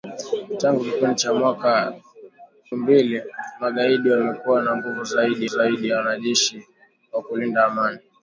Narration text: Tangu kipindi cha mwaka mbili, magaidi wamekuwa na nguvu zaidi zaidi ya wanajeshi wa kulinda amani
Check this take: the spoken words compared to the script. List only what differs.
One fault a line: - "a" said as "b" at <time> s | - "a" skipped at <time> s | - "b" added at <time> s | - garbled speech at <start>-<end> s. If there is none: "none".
none